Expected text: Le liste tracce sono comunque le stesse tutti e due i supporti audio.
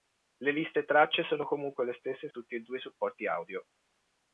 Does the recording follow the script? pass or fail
pass